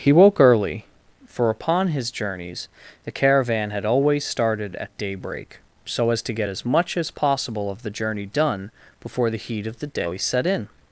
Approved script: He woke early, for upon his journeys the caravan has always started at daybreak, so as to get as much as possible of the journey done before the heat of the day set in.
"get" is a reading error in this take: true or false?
false